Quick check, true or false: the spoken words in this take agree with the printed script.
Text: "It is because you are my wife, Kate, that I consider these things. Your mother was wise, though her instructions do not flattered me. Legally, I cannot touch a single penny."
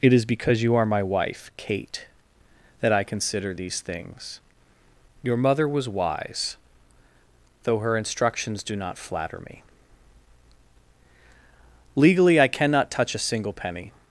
false